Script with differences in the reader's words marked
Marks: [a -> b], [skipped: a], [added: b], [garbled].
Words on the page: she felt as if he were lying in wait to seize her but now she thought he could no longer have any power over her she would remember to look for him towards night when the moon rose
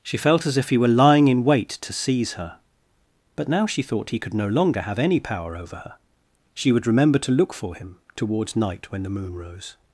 she felt as if he were lying in wait to seize her but now she thought he could no longer have any power over her she would remember to look for him towards night when the moon rose